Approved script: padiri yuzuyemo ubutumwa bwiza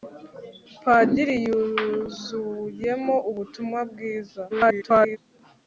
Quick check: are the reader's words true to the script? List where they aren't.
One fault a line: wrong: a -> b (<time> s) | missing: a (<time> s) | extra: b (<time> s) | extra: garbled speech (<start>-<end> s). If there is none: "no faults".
extra: garbled speech (4.5-5.2 s)